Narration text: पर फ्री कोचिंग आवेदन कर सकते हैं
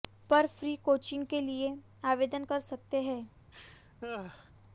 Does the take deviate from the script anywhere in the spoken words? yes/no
yes